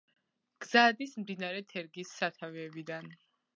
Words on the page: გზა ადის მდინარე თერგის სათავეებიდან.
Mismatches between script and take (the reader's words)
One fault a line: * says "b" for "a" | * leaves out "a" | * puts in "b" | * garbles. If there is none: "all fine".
all fine